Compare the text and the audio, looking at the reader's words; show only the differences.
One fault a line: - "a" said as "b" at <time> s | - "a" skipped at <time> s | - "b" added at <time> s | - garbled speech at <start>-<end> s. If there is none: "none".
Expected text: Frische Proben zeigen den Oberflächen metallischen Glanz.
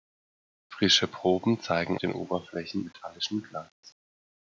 none